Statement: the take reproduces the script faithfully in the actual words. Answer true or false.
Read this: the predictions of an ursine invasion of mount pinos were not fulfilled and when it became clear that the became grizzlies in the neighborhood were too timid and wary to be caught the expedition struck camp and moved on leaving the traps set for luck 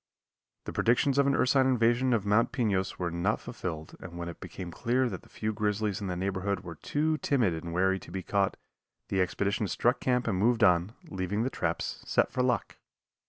false